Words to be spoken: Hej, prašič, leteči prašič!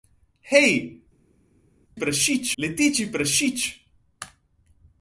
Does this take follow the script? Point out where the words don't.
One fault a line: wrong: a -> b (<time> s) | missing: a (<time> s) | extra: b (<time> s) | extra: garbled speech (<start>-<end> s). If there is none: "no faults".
no faults